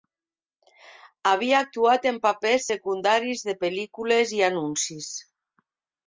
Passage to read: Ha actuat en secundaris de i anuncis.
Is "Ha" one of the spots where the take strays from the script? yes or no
yes